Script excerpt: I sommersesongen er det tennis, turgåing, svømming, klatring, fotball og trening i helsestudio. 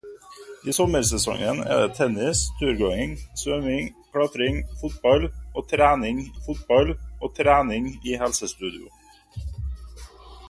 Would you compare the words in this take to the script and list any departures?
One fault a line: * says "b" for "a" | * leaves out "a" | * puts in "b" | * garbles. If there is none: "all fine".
* puts in "fotball og trening"